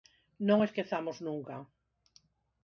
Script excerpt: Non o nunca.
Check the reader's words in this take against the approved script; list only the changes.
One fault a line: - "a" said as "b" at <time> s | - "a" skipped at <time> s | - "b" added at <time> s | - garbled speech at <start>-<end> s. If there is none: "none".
- "esquezamos" added at 0.7 s